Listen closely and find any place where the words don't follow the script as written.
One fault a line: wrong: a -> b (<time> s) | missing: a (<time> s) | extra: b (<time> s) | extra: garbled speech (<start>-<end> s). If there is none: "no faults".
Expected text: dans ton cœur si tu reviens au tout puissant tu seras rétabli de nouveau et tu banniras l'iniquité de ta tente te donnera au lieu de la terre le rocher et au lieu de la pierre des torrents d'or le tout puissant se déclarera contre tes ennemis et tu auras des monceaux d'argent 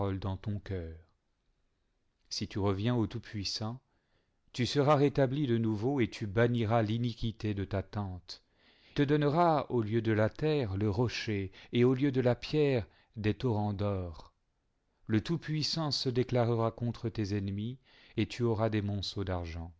no faults